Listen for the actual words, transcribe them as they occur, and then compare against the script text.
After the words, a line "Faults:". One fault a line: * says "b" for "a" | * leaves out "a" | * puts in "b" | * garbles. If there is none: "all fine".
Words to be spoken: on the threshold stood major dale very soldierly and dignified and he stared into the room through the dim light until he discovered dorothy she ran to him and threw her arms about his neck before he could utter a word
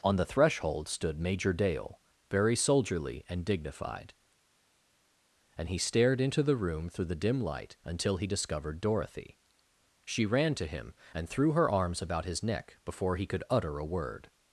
on the threshold stood major dale very soldierly and dignified and he stared into the room through the dim light until he discovered dorothy she ran to him and threw her arms about his neck before he could utter a word
Faults:
all fine